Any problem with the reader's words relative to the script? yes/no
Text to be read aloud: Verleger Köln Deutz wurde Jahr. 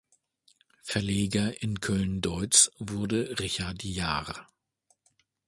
yes